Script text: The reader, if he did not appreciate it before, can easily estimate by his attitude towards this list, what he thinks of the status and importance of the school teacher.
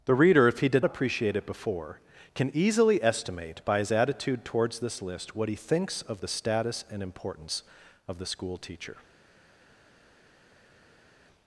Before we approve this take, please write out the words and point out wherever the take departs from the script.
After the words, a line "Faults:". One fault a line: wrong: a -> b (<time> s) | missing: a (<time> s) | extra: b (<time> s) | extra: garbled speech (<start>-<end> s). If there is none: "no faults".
The reader, if he did appreciate it before, can easily estimate by his attitude towards this list, what he thinks of the status and importance of the school teacher.
Faults:
missing: not (0.8 s)